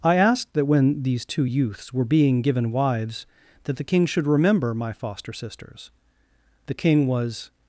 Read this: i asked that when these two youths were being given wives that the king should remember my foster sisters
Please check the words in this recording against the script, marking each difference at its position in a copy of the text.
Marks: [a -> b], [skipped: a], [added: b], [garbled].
i asked that when these two youths were being given wives that the king should remember my foster sisters [added: the king was]